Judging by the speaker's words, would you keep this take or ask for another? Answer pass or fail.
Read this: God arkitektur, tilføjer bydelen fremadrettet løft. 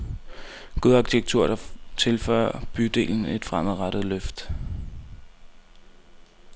fail